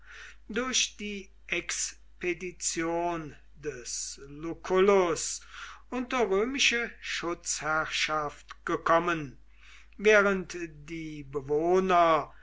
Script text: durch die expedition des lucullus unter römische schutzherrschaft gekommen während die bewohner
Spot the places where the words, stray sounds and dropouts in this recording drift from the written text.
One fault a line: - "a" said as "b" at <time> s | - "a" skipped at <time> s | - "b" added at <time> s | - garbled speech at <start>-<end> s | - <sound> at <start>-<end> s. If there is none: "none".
none